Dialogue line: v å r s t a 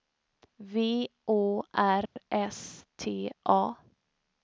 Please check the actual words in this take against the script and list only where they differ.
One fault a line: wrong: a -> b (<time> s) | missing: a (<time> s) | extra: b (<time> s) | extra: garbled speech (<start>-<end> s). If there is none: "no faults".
no faults